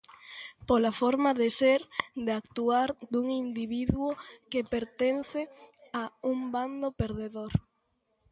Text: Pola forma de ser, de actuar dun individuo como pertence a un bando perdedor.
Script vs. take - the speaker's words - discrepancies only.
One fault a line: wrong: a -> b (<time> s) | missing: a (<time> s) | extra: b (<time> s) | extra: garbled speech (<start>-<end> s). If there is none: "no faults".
wrong: como -> que (4.5 s)